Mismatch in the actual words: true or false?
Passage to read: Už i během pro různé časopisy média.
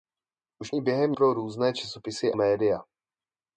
false